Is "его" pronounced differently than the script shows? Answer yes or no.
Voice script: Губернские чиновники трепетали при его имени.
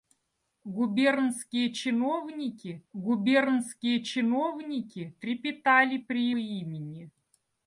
yes